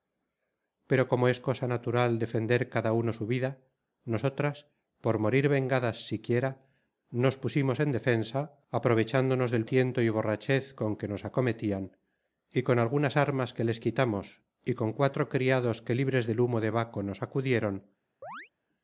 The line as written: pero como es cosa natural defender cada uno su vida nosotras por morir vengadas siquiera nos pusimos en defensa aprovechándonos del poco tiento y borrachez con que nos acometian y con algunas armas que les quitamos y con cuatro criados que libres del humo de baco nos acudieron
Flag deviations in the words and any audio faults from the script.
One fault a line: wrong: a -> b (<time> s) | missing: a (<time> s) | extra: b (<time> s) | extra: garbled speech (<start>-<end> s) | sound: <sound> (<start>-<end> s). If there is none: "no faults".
missing: poco (9.7 s)
sound: chirp (18.2-18.5 s)